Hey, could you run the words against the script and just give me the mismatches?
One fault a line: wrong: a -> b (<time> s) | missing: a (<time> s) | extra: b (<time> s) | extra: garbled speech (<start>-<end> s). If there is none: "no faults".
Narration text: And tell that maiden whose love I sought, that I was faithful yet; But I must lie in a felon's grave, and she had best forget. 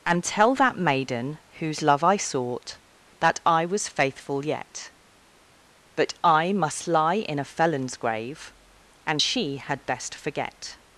no faults